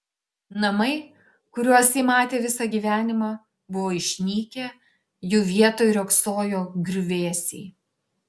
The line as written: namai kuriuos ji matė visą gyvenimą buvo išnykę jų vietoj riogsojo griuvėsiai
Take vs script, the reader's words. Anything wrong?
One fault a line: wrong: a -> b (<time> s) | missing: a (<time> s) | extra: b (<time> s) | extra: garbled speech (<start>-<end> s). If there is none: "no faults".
no faults